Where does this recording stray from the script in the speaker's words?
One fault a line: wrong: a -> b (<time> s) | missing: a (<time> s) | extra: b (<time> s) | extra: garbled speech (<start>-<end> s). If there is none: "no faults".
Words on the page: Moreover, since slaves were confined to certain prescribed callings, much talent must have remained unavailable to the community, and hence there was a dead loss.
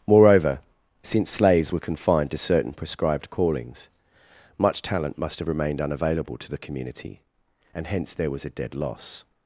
no faults